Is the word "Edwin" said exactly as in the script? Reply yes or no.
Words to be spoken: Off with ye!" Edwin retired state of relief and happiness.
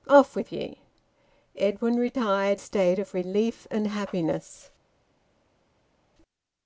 yes